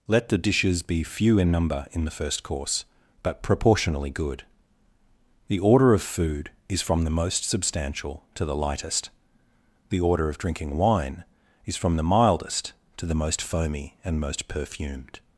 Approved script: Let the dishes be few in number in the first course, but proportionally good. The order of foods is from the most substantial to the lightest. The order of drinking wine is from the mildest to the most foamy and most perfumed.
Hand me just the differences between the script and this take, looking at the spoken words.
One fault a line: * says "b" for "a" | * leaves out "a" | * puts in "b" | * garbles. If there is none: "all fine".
* says "food" for "foods"